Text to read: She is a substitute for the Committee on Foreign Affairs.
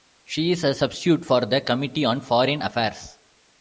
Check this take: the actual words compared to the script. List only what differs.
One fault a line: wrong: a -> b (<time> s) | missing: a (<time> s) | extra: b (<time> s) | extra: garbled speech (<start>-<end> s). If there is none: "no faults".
no faults